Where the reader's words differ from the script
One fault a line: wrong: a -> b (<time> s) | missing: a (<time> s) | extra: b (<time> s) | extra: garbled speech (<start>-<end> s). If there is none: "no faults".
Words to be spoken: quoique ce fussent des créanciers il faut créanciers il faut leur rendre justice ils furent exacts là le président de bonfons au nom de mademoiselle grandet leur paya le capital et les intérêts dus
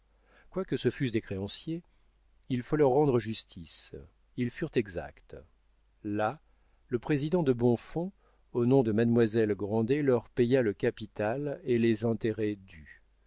missing: créanciers il faut (2.8 s)